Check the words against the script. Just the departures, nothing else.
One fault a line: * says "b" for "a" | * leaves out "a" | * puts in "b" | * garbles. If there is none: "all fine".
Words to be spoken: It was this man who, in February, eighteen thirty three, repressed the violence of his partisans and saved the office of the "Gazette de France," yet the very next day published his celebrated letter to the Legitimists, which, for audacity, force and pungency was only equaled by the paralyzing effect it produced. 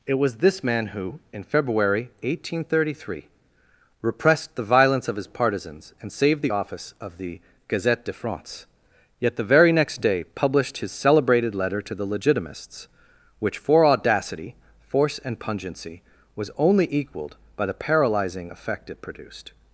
all fine